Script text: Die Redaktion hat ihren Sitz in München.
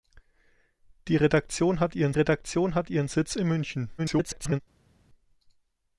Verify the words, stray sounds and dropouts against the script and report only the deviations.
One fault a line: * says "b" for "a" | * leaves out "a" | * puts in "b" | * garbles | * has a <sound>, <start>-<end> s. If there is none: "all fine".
* puts in "Redaktion hat ihren"
* garbles